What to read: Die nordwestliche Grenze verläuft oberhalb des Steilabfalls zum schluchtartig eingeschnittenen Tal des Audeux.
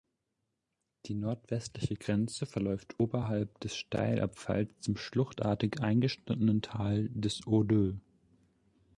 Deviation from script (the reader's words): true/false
false